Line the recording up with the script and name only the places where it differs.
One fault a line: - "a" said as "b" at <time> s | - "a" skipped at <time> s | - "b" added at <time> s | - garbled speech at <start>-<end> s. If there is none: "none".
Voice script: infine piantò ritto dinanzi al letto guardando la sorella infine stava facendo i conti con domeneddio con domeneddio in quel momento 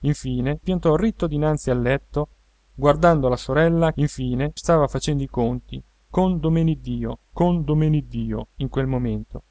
none